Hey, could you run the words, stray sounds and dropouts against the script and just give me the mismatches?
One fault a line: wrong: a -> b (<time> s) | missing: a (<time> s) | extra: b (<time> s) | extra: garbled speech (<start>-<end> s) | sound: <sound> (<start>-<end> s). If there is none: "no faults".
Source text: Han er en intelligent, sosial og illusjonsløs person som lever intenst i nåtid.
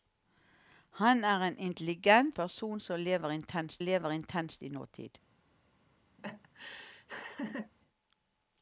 wrong: sosial og illusjonsløs person som -> person som lever intenst (2.3 s)
sound: laugh (6.2-7.7 s)